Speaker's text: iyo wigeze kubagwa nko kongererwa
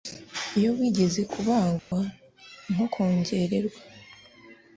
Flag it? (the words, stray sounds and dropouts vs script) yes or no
yes